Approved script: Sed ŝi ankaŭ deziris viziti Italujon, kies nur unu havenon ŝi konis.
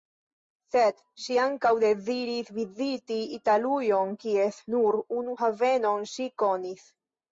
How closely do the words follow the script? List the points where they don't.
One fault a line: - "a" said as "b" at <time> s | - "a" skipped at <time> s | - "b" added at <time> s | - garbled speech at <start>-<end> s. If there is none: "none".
none